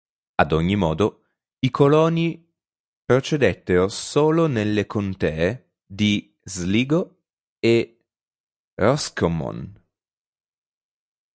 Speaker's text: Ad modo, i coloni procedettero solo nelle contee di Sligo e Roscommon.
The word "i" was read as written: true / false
true